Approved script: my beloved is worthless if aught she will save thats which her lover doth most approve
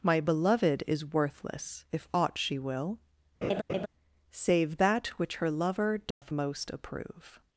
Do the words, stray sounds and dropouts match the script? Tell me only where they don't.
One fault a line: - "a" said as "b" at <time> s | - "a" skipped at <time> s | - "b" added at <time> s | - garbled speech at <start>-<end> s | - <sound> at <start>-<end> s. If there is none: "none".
- laugh at 3.4-3.9 s
- "thats" said as "that" at 4.8 s
- dropout at 6.1-6.2 s